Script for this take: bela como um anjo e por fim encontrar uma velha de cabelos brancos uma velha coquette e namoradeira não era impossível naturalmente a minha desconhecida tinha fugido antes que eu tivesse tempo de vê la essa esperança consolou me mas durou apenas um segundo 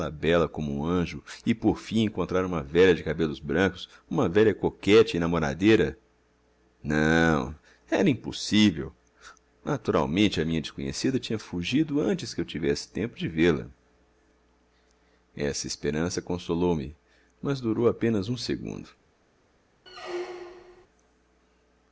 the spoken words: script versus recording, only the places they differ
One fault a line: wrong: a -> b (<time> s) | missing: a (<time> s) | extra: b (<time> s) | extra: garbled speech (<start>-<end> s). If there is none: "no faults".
no faults